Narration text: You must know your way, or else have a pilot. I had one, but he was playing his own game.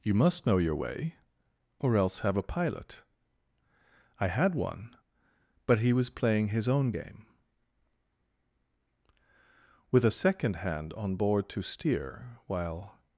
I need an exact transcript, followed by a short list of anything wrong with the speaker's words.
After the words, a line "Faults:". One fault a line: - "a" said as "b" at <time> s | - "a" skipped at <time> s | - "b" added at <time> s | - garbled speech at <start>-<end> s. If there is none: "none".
You must know your way, or else have a pilot. I had one, but he was playing his own game. "With a second hand on board to steer while
Faults:
- "With a second hand on board to steer while" added at 9.9 s